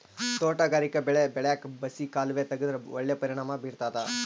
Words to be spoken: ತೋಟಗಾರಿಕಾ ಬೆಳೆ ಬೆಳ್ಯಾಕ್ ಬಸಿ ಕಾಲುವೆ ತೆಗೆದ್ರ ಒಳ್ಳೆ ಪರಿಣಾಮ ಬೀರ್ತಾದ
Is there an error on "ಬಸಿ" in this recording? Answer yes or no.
no